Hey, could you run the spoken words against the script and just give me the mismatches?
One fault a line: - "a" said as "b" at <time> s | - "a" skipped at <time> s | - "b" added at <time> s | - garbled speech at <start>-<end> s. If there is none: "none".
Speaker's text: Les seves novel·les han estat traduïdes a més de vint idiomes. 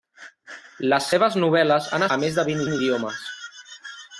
- "estat traduïdes" skipped at 2.1 s
- "vint" added at 2.7 s